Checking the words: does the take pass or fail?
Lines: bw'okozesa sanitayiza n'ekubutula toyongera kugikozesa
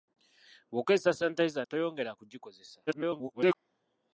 fail